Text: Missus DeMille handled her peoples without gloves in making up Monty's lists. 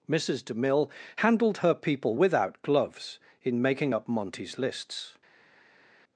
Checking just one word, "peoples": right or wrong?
wrong